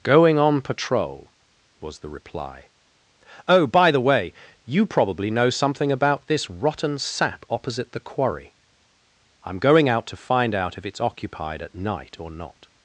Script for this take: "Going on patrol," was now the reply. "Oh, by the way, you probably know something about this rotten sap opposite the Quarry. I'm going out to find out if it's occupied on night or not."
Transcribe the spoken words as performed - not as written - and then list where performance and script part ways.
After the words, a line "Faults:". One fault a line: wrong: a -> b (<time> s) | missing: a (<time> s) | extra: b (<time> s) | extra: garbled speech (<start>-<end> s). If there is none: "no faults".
"Going on patrol," was the reply. "Oh, by the way, you probably know something about this rotten sap opposite the Quarry. I'm going out to find out if it's occupied at night or not."
Faults:
missing: now (2.0 s)
wrong: on -> at (11.6 s)